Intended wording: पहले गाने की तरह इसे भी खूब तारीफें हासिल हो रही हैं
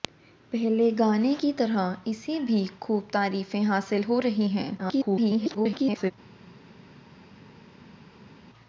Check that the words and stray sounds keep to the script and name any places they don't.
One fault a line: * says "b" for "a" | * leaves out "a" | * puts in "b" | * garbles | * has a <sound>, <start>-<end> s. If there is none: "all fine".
* garbles